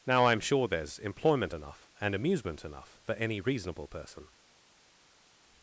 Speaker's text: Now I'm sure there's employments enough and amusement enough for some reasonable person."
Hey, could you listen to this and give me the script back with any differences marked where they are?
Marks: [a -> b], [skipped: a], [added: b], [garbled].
Now I'm sure there's [employments -> employment] enough and amusement enough for [some -> any] reasonable person."